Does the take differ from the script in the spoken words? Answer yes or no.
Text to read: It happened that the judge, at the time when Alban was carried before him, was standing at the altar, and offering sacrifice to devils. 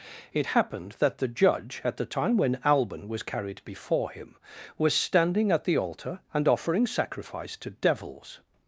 no